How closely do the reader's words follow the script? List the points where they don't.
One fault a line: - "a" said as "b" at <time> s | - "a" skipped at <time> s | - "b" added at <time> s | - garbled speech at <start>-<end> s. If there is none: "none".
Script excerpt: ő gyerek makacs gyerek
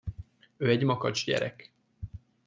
- "gyerek" said as "egy" at 0.7 s